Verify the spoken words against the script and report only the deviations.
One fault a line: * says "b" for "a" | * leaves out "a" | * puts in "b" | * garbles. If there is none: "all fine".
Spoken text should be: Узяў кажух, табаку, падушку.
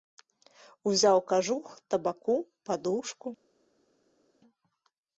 all fine